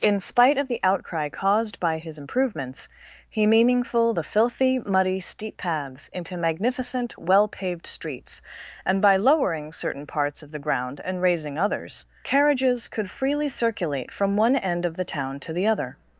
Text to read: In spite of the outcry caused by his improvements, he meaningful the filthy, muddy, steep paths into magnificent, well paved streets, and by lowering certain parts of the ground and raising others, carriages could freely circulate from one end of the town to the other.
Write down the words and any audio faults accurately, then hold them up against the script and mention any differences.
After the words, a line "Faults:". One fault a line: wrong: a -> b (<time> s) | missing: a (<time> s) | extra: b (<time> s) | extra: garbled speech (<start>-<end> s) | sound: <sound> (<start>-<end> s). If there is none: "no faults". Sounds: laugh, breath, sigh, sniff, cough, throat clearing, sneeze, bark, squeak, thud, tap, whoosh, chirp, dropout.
In spite of the outcry caused by his improvements, he meaningful the filthy, muddy, steep paths into magnificent, well paved streets, and by lowering certain parts of the ground and raising others, carriages could freely circulate from one end of the town to the other.
Faults:
no faults